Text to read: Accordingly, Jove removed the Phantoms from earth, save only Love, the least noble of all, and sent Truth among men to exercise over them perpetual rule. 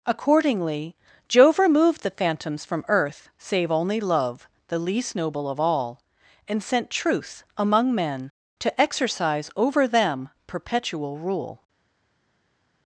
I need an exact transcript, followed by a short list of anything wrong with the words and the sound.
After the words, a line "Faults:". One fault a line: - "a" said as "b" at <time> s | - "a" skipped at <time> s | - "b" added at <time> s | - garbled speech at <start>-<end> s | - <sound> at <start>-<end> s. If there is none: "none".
Accordingly, Jove removed the Phantoms from earth, save only Love, the least noble of all, and sent Truth among men to exercise over them perpetual rule.
Faults:
none